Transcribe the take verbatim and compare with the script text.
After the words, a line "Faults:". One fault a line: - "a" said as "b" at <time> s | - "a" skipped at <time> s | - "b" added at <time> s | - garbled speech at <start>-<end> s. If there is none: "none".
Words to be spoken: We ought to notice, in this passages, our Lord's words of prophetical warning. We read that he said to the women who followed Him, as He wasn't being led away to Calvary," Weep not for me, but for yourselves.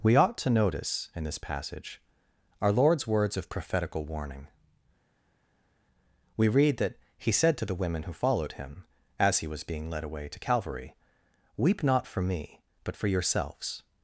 We ought to notice, in this passage, our Lord's words of prophetical warning. We read that he said to the women who followed Him, as He was being led away to Calvary," Weep not for me, but for yourselves.
Faults:
- "passages" said as "passage" at 1.4 s
- "wasn't" said as "was" at 9.5 s